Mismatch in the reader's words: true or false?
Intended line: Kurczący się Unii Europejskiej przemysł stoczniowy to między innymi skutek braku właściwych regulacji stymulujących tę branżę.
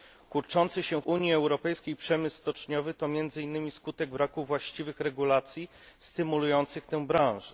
false